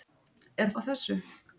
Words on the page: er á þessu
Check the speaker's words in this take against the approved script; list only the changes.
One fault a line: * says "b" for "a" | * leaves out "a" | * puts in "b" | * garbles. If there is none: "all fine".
all fine